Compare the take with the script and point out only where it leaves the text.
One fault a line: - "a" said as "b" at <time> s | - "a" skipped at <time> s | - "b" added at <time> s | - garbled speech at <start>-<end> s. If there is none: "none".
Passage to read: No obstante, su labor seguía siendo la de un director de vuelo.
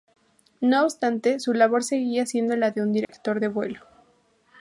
none